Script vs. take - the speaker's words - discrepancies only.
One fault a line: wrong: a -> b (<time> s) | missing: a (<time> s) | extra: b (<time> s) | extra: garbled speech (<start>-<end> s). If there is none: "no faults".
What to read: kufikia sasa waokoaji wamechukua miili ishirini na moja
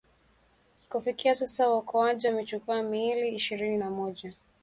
no faults